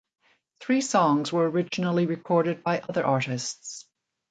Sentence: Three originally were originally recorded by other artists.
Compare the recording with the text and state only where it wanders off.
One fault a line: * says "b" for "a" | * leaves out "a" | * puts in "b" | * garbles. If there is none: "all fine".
* says "songs" for "originally"